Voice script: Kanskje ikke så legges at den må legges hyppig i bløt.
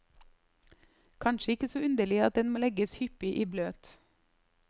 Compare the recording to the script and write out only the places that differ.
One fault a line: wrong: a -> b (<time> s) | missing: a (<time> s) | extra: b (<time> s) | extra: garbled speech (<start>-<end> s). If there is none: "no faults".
wrong: legges -> underlig (1.8 s)